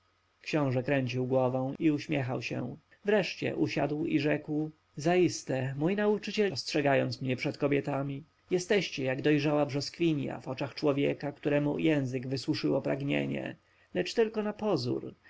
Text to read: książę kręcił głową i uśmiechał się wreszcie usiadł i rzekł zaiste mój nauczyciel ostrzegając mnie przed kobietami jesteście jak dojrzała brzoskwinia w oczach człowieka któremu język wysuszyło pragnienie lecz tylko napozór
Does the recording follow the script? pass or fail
pass